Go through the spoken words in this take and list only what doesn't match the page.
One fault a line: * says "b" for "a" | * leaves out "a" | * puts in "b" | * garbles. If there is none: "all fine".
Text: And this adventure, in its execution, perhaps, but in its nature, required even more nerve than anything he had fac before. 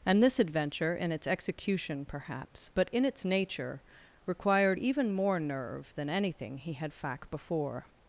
all fine